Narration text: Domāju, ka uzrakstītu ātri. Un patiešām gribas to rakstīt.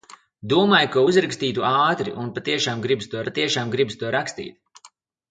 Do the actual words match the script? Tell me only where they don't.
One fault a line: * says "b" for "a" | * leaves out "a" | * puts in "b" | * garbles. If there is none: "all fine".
* puts in "patiešām gribas to"